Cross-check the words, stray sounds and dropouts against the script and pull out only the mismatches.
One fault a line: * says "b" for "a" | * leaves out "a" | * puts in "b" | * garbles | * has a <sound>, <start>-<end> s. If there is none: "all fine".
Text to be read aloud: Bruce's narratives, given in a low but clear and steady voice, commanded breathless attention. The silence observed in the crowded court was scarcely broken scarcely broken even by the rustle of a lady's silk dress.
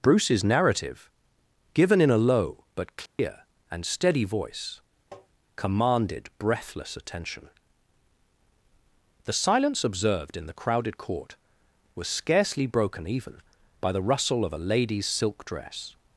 * says "narrative" for "narratives"
* has a dropout, 3.1-3.2 s
* has a tap, 5.1-5.3 s
* leaves out "scarcely broken"